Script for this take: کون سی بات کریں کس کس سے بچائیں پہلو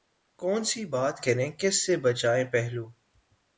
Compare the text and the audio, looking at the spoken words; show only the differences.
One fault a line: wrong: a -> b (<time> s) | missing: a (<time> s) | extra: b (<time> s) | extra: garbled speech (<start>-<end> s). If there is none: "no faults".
missing: کس (1.9 s)